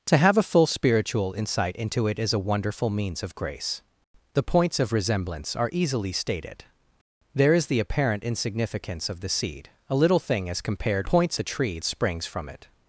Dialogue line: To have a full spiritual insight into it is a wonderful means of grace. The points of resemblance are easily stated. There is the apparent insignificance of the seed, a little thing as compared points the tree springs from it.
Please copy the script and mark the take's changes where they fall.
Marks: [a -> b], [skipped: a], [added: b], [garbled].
To have a full spiritual insight into it is a wonderful means of grace. The points of resemblance are easily stated. There is the apparent insignificance of the seed, a little thing as compared points the tree springs from it.